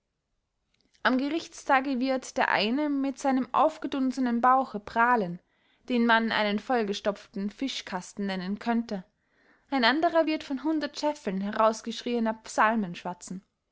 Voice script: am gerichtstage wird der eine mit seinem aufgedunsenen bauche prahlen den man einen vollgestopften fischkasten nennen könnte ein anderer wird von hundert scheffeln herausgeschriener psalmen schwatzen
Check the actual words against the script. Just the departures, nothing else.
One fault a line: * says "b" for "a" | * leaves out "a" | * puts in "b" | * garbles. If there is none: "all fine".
all fine